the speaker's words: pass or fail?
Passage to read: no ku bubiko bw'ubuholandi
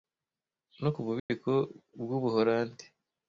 pass